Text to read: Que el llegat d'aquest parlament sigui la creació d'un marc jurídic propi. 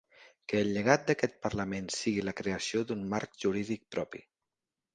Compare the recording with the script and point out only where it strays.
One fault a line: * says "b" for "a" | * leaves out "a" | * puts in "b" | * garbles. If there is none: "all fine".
all fine